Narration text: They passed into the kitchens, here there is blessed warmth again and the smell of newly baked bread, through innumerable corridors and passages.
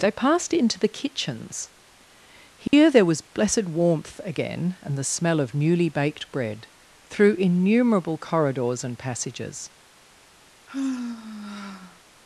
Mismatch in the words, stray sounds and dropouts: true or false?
true